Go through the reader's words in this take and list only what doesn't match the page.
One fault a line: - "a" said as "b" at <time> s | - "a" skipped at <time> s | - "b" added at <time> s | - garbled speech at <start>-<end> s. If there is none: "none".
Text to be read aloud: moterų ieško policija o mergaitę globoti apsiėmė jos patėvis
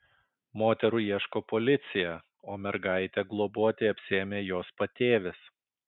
none